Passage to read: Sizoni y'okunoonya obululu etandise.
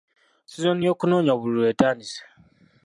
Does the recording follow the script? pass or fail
pass